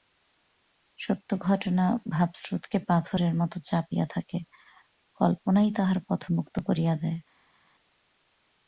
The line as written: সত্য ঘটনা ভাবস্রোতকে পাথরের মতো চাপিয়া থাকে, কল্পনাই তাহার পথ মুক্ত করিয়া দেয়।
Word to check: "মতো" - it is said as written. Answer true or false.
true